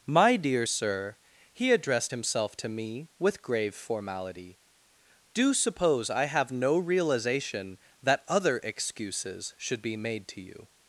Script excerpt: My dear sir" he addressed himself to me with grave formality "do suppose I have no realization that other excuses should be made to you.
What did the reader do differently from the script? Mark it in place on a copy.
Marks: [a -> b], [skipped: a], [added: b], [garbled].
My dear sir" he addressed himself to me with grave formality "do suppose I have no realization that other excuses should be made to you.